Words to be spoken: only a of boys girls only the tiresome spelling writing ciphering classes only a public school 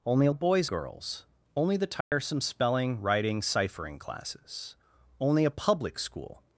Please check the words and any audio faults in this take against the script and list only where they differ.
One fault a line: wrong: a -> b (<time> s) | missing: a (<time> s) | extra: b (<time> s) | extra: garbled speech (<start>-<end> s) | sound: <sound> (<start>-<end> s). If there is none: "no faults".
sound: dropout (2.0-2.1 s)